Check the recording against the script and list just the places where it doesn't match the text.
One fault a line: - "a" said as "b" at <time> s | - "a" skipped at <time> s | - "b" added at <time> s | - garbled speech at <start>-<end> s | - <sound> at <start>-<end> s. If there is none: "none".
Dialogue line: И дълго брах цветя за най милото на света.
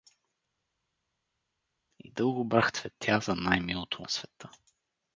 none